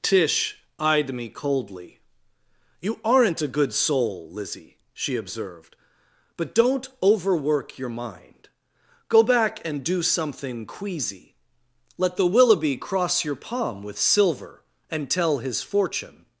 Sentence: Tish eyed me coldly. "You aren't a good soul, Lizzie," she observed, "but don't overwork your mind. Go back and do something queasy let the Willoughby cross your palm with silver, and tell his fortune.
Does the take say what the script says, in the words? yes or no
yes